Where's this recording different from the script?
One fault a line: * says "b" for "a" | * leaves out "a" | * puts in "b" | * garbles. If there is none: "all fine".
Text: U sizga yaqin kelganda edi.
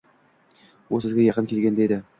all fine